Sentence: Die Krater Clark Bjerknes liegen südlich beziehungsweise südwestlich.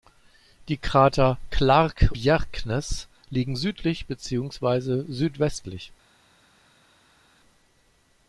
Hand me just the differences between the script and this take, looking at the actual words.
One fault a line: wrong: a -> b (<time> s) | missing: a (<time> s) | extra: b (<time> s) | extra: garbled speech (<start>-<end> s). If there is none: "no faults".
no faults